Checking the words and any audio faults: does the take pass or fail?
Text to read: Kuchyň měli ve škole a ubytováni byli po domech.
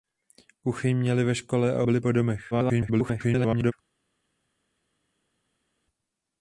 fail